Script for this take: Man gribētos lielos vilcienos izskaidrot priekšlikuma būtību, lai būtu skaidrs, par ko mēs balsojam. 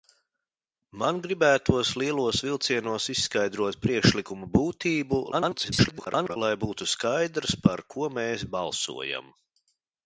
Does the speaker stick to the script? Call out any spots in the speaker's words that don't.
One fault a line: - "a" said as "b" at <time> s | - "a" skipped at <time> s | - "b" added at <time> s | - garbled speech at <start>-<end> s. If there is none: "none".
- garbled speech at 5.3-6.4 s